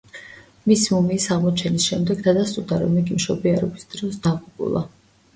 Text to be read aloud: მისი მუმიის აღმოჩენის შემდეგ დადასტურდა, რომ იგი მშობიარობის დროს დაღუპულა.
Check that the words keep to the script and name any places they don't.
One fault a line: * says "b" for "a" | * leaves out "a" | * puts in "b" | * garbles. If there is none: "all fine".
all fine